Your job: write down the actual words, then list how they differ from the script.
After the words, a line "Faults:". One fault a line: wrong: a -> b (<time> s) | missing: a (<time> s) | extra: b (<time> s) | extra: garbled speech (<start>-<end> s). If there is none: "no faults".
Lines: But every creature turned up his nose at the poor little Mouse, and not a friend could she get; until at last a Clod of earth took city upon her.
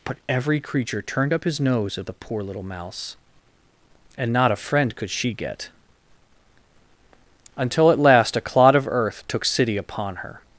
But every creature turned up his nose at the poor little Mouse, and not a friend could she get; until at last a Clod of earth took city upon her.
Faults:
no faults